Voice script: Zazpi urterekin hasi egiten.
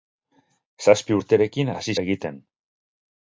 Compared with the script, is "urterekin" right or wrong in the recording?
right